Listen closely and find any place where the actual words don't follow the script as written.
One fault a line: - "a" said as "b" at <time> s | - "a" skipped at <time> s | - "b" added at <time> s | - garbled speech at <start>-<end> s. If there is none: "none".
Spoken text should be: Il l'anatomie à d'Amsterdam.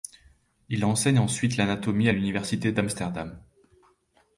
- "enseigne ensuite" added at 0.8 s
- "l'université" added at 2.1 s